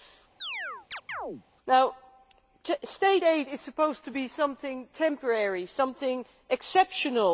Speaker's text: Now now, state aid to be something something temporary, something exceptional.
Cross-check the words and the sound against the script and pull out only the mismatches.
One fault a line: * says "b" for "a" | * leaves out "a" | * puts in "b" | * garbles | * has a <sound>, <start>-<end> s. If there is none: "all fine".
* has a chirp, 0.4-1.4 s
* leaves out "now"
* puts in "is supposed"
* leaves out "something"